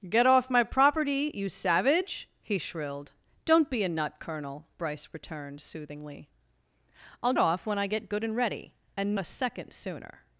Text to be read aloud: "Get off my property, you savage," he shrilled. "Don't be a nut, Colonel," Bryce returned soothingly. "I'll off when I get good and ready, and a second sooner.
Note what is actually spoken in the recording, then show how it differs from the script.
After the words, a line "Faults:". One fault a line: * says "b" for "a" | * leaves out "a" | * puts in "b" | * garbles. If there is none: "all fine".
"Get off my property, you savage," he shrilled. "Don't be a nut, Colonel," Bryce returned soothingly. "I'll off when I get good and ready, and a second sooner.
Faults:
all fine